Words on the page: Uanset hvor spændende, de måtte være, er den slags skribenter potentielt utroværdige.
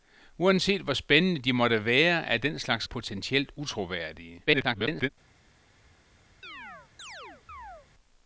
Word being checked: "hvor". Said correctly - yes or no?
yes